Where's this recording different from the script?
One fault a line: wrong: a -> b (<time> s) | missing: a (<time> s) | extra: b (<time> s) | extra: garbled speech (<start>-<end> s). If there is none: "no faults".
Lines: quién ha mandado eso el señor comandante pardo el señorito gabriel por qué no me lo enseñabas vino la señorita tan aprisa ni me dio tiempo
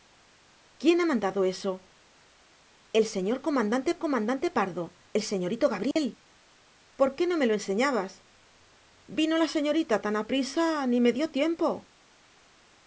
extra: comandante (4.0 s)